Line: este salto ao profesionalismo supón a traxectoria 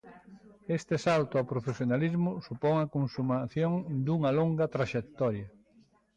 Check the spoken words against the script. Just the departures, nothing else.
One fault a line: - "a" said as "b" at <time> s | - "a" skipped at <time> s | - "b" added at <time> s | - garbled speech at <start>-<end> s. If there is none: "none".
- "consumación dunha longa" added at 3.0 s